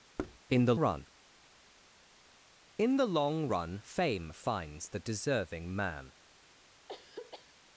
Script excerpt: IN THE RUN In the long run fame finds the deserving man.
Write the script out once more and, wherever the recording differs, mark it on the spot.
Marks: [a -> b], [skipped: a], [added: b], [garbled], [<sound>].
[thud] IN THE RUN In the long run fame finds the deserving man. [throat clearing]